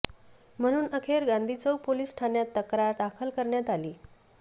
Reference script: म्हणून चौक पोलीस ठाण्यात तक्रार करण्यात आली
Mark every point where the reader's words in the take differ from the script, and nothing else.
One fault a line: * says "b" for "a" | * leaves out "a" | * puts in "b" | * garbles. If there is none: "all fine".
* puts in "अखेर गांधी"
* puts in "दाखल"